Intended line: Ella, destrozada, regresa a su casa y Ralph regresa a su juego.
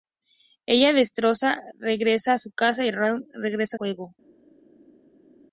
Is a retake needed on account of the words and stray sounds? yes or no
yes